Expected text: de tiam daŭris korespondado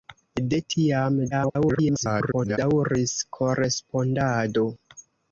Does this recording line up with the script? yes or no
no